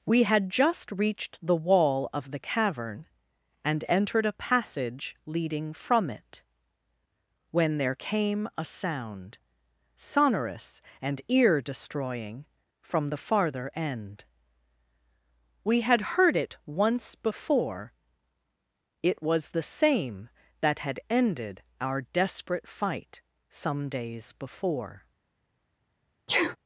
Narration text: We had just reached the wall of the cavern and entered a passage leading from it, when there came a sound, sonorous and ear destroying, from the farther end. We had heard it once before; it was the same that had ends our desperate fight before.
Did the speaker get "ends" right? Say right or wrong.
wrong